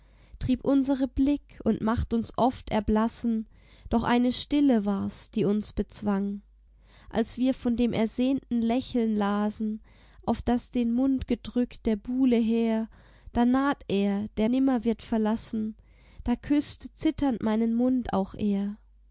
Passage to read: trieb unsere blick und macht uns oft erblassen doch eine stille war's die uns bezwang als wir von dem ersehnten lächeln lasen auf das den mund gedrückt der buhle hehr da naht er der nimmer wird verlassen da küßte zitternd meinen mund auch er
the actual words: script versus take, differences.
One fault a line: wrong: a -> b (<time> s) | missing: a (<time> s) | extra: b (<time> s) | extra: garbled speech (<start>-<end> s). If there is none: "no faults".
no faults